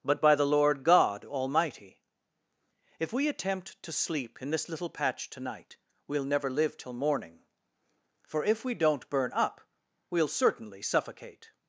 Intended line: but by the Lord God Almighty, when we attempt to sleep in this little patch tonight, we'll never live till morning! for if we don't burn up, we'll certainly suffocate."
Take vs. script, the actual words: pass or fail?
fail